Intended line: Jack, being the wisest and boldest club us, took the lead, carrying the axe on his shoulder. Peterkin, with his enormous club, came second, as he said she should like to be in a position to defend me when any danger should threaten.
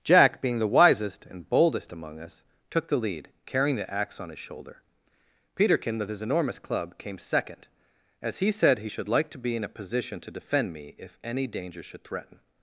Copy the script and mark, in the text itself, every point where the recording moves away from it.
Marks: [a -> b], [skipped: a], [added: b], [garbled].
Jack, being the wisest and boldest [club -> among] us, took the lead, carrying the axe on his shoulder. Peterkin, with his enormous club, came second, as he said [she -> he] should like to be in a position to defend me [when -> if] any danger should threaten.